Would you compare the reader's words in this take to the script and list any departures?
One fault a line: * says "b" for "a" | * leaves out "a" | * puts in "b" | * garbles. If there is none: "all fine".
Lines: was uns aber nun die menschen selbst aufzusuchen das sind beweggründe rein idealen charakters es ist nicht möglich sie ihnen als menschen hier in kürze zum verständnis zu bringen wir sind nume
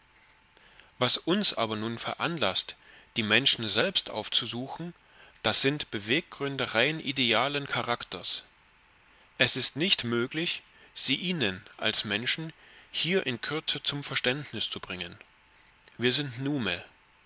* puts in "veranlaßt"